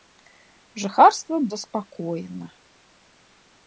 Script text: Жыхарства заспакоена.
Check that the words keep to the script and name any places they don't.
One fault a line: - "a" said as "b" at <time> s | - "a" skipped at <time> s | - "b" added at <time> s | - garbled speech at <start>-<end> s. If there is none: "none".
none